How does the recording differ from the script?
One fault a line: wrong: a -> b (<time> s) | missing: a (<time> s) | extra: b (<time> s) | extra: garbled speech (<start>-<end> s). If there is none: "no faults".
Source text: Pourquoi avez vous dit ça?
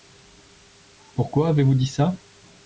no faults